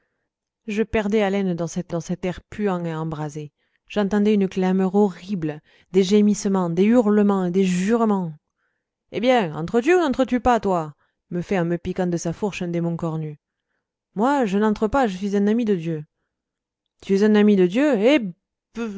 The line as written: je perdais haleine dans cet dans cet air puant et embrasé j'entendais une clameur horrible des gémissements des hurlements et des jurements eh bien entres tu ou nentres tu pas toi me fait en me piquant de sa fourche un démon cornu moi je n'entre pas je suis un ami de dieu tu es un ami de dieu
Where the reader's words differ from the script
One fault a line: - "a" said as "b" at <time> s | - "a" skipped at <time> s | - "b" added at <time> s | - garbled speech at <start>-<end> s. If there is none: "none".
none